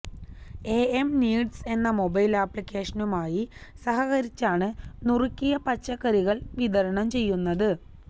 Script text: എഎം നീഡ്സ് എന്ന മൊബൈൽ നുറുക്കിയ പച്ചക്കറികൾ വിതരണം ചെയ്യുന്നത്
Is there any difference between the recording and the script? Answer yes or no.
yes